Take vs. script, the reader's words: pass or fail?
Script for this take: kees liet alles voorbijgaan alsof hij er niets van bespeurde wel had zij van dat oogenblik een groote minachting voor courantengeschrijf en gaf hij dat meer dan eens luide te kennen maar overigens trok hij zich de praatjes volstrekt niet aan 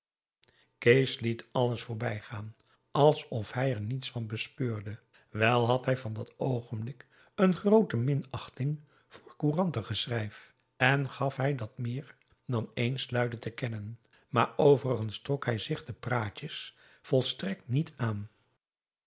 fail